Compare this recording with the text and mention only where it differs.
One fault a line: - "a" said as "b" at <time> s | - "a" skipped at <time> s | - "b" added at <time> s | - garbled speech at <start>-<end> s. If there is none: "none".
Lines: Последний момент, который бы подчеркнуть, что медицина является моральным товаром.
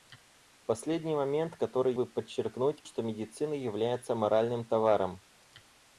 none